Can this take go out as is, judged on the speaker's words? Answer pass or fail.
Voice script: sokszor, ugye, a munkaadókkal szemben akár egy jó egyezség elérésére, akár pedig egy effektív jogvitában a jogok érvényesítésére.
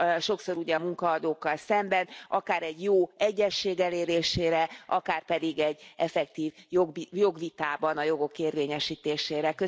pass